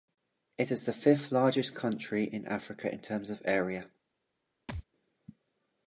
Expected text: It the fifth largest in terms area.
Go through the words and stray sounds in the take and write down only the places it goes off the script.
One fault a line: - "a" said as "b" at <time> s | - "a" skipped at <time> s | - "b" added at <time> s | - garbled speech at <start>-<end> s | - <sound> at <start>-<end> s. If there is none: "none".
- "is" added at 0.7 s
- "country" added at 1.8 s
- "Africa in" added at 2.5 s
- "of" added at 3.3 s
- thud at 4.7-4.8 s